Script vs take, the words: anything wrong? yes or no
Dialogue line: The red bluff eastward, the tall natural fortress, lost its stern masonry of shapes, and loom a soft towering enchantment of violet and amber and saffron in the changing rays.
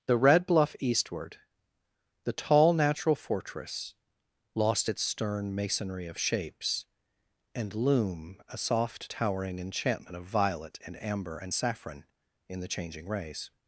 no